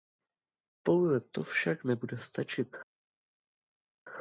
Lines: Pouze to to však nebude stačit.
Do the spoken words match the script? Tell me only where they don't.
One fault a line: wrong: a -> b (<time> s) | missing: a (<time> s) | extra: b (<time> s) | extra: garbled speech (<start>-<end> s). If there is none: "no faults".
missing: to (1.4 s)